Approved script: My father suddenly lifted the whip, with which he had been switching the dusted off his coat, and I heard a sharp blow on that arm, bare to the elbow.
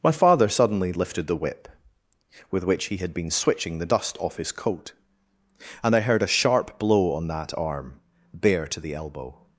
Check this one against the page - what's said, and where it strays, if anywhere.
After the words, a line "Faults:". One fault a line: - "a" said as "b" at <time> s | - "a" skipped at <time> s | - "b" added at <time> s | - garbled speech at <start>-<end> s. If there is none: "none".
My father suddenly lifted the whip, with which he had been switching the dust off his coat, and I heard a sharp blow on that arm, bare to the elbow.
Faults:
- "dusted" said as "dust" at 3.9 s